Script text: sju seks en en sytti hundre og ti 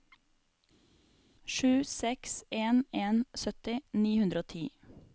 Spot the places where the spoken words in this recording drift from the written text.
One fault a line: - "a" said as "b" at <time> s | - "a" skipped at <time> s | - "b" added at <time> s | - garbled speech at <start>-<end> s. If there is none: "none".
- "ni" added at 4.0 s